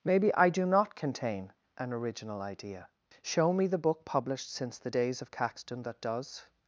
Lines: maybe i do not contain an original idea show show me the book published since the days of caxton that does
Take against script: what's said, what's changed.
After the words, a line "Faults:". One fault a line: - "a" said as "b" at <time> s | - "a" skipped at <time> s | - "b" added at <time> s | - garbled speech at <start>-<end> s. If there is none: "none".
maybe i do not contain an original idea show me the book published since the days of caxton that does
Faults:
- "show" skipped at 3.5 s